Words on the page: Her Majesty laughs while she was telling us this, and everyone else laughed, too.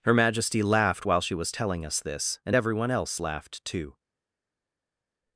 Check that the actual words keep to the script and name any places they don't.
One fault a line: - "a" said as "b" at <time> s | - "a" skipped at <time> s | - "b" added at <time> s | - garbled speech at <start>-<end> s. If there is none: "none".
- "laughs" said as "laughed" at 0.6 s